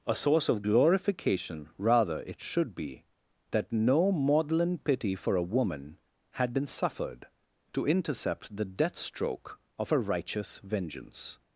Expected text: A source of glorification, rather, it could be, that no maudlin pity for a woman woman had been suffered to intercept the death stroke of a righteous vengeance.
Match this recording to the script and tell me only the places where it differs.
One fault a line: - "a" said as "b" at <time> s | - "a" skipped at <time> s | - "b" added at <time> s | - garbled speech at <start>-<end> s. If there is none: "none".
- "could" said as "should" at 2.4 s
- "woman" skipped at 6.0 s